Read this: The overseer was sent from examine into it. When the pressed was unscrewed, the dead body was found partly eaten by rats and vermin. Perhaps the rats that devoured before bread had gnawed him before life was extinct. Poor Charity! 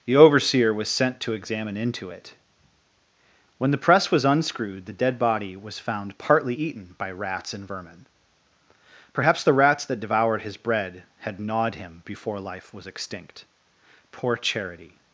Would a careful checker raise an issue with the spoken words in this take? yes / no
yes